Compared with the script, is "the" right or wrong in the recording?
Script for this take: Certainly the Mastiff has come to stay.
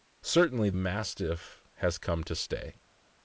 wrong